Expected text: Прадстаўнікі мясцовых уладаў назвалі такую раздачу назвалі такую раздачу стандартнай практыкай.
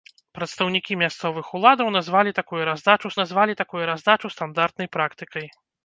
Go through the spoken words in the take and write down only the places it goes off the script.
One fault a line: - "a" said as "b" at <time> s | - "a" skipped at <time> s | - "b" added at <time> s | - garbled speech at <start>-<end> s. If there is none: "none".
none